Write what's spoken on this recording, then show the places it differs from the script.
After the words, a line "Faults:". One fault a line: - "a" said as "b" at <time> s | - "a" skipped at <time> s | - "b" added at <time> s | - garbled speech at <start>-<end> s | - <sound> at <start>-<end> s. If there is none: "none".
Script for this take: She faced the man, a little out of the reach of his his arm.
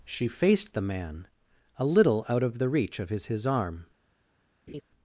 She faced the man, a little out of the reach of his his arm.
Faults:
- laugh at 4.7-4.8 s